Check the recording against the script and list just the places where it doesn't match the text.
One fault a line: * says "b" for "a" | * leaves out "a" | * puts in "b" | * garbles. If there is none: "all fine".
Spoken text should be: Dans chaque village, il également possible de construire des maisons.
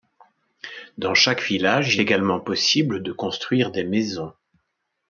all fine